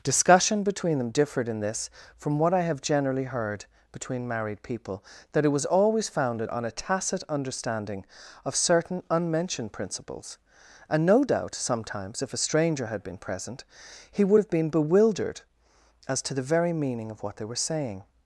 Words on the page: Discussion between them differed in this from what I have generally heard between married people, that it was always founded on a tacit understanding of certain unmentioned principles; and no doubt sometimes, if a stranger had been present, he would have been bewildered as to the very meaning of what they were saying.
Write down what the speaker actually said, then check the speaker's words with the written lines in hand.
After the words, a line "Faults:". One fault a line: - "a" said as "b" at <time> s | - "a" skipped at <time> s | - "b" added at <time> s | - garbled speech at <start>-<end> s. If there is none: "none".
Discussion between them differed in this from what I have generally heard between married people, that it was always founded on a tacit understanding of certain unmentioned principles; and no doubt sometimes, if a stranger had been present, he would have been bewildered as to the very meaning of what they were saying.
Faults:
none